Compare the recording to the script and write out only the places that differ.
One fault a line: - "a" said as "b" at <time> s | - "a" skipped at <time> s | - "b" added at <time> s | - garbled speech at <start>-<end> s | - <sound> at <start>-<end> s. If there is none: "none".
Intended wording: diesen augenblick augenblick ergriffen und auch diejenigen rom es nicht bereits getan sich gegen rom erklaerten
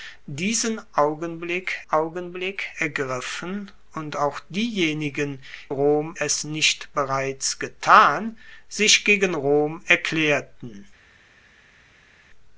none